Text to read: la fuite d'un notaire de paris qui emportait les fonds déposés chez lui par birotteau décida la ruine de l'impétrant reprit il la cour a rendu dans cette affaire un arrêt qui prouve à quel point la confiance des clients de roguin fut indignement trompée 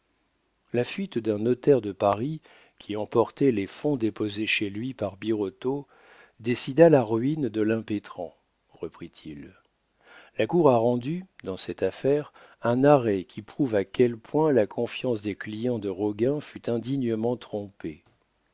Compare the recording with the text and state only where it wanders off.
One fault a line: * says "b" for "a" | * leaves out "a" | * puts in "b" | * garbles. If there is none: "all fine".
all fine